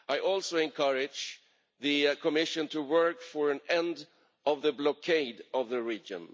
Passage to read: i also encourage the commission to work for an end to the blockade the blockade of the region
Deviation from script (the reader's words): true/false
true